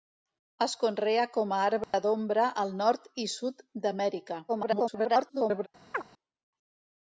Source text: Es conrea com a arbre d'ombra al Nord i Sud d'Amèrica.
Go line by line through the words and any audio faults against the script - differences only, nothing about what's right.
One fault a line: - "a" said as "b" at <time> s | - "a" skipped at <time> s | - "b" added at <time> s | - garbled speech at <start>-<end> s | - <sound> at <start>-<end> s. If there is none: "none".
- dropout at 1.8-1.9 s
- garbled speech at 4.5-5.7 s
- chirp at 5.9-6.0 s